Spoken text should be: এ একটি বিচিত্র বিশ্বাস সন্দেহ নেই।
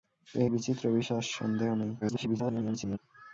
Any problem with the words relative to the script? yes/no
yes